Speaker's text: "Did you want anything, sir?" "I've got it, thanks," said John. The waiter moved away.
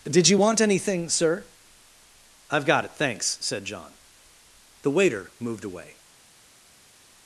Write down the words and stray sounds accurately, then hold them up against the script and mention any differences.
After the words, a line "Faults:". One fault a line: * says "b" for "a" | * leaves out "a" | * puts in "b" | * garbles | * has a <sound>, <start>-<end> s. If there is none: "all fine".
"Did you want anything, sir?" "I've got it, thanks," said John. The waiter moved away.
Faults:
all fine